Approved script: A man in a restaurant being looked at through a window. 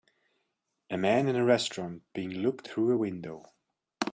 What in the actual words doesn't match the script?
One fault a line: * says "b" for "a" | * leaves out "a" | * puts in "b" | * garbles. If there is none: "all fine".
* leaves out "at"